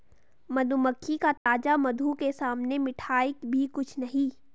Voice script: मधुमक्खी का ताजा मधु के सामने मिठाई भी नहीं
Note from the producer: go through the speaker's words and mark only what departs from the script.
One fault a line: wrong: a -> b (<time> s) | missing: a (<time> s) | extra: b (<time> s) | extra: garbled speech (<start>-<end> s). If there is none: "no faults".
extra: कुछ (3.7 s)